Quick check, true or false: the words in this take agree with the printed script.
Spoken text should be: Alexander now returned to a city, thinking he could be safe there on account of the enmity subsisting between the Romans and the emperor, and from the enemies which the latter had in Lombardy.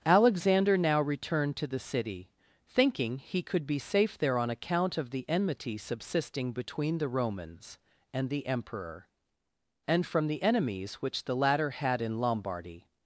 false